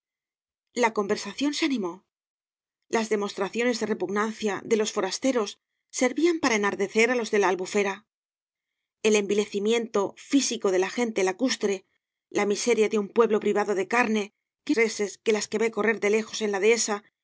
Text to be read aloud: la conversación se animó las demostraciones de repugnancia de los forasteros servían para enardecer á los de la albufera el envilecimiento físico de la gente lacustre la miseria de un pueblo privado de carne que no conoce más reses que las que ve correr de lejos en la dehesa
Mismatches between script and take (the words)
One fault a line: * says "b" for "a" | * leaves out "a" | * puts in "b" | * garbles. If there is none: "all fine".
* leaves out "no conoce más"